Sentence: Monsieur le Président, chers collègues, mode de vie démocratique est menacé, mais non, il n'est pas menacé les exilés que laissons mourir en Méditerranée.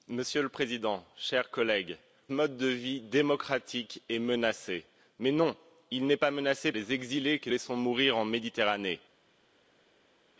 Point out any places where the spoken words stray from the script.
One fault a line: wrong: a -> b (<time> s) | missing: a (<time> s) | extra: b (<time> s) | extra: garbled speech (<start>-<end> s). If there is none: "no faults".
no faults